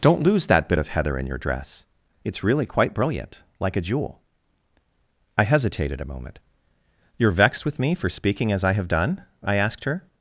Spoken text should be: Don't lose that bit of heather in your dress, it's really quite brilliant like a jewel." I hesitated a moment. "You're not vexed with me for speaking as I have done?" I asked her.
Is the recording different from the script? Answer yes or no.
yes